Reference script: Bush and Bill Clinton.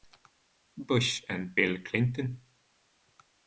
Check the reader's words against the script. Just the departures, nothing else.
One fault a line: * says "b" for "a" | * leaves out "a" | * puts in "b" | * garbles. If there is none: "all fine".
all fine